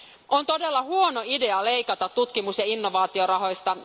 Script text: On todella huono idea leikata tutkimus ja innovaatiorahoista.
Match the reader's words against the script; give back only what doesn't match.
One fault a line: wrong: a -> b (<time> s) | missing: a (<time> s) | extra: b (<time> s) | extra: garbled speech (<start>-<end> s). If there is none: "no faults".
no faults